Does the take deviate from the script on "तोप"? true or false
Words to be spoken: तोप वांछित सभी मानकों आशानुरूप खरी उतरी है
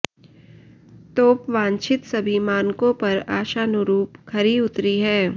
false